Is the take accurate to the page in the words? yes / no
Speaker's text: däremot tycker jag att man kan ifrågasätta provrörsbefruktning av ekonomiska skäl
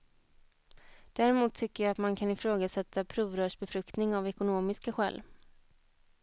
yes